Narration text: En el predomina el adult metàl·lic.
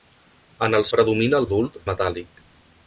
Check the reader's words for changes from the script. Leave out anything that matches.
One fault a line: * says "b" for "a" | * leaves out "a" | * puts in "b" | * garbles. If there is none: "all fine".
all fine